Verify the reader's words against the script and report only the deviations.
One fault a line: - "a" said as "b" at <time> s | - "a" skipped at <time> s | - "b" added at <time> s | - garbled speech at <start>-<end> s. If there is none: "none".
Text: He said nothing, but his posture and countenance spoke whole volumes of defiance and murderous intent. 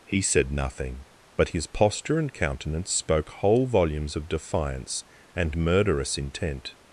none